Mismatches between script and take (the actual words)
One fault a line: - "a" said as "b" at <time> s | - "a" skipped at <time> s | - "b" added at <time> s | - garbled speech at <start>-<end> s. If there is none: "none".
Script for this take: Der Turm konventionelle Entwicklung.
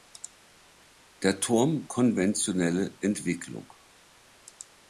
none